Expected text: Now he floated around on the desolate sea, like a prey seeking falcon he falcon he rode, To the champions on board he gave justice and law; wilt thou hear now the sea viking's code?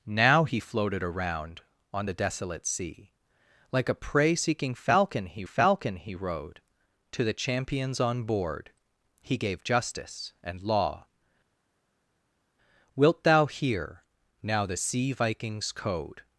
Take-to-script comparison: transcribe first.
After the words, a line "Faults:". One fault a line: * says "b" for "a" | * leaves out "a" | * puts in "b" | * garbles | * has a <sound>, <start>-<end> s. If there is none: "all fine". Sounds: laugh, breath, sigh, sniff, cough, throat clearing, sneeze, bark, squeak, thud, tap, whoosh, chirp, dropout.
Now he floated around on the desolate sea, like a prey seeking falcon he falcon he rode, To the champions on board he gave justice and law; wilt thou hear now the sea viking's code?
Faults:
all fine